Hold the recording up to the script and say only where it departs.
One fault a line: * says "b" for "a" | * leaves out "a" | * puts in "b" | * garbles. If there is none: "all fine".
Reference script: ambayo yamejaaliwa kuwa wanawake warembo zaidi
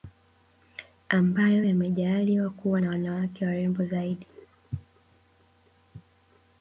* puts in "na"